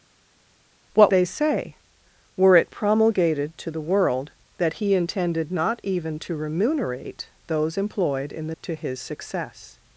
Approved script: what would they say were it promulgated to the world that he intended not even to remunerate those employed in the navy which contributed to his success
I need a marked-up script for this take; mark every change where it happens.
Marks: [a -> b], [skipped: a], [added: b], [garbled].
what [skipped: would] they say were it promulgated to the world that he intended not even to remunerate those employed in the [skipped: navy which contributed] to his success